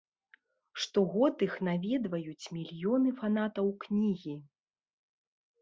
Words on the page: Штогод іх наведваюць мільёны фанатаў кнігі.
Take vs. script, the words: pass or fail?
pass